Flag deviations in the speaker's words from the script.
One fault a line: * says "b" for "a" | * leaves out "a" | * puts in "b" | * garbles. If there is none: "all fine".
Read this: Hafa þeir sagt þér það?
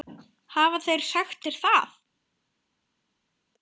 all fine